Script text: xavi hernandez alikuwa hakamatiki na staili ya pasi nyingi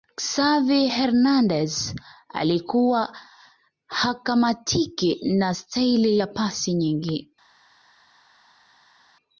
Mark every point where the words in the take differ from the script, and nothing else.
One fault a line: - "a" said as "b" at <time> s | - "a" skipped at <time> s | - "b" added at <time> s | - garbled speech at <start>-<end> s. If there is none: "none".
none